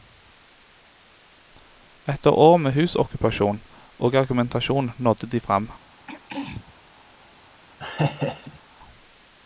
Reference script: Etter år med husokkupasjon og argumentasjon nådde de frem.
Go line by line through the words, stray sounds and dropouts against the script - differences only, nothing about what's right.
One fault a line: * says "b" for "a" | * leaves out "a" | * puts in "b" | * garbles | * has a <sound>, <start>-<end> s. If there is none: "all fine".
* has a throat clearing, 6.1-6.7 s
* has a laugh, 7.8-8.6 s